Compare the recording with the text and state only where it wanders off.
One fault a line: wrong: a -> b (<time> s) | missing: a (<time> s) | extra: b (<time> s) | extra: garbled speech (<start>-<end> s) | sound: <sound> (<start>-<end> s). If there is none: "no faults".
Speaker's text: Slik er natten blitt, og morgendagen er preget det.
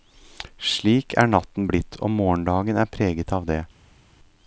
extra: av (3.4 s)